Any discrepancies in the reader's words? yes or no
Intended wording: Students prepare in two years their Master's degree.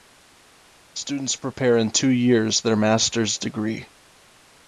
no